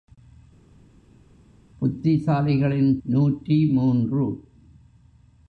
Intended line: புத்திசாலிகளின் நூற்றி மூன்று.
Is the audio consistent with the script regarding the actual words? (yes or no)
yes